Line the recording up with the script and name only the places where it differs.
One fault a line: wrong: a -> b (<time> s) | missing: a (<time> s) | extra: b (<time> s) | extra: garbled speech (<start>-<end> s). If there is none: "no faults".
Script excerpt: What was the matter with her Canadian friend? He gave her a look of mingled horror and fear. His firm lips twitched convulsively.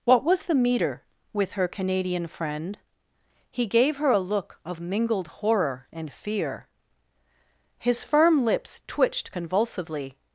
wrong: matter -> meter (0.6 s)